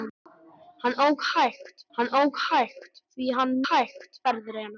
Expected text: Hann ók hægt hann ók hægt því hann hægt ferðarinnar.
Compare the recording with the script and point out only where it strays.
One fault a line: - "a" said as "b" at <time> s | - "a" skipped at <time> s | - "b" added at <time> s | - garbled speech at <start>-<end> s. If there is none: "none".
none